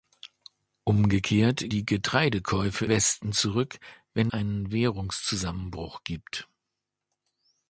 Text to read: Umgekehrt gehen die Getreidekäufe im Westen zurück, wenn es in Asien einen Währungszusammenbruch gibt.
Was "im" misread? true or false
true